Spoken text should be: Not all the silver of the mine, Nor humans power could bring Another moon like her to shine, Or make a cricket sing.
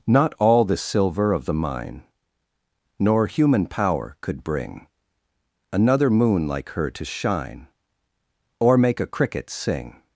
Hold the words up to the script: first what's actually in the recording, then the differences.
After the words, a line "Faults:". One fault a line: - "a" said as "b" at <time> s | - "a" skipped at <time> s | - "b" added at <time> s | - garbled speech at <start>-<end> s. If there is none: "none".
Not all the silver of the mine, Nor human power could bring Another moon like her to shine, Or make a cricket sing.
Faults:
- "humans" said as "human" at 3.3 s